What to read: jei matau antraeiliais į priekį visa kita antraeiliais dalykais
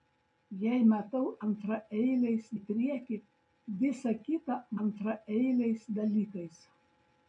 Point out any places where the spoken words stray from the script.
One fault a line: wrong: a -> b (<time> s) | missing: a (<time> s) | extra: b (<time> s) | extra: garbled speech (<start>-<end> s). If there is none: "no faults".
no faults